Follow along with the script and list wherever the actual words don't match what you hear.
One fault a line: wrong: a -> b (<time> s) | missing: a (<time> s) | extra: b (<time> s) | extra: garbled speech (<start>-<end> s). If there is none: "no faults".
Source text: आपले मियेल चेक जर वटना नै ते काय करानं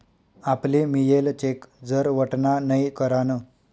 missing: ते काय (2.8 s)